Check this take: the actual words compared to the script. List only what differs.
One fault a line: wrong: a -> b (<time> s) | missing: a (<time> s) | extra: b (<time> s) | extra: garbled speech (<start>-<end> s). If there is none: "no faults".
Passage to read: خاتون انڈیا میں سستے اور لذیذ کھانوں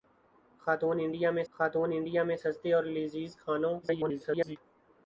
extra: خاتون انڈیا میں (1.5 s)
extra: garbled speech (3.8-4.6 s)